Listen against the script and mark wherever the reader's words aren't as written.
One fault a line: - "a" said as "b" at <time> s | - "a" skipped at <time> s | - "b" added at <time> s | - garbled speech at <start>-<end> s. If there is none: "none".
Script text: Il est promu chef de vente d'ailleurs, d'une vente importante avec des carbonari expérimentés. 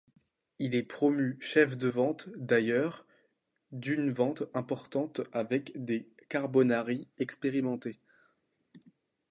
none